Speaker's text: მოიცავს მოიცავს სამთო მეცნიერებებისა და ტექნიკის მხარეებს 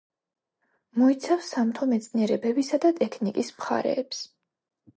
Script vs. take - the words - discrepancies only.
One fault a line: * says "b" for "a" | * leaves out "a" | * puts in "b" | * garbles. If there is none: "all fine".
* leaves out "მოიცავს"